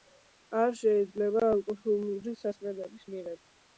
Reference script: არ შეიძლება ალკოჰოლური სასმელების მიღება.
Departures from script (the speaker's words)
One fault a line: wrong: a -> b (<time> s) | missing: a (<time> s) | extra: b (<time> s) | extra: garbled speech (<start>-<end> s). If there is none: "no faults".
no faults